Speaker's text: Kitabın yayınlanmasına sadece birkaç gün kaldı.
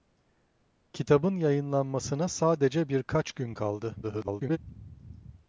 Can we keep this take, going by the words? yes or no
no